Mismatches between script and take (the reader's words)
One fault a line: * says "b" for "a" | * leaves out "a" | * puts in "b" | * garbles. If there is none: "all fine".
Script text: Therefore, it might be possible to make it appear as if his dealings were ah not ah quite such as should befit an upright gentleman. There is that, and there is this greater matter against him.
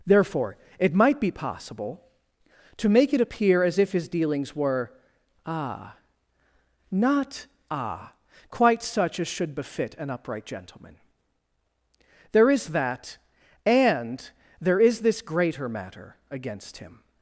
all fine